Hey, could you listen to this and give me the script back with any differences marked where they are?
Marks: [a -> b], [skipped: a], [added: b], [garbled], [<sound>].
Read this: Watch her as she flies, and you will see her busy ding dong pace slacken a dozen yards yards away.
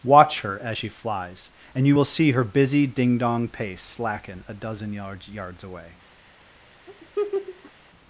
Watch her as she flies, and you will see her busy ding dong pace slacken a dozen yards yards away. [laugh]